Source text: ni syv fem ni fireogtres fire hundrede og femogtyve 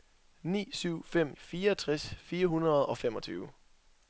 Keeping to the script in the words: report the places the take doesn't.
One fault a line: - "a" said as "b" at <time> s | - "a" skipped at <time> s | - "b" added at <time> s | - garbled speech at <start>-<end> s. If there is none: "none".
- "ni" skipped at 1.4 s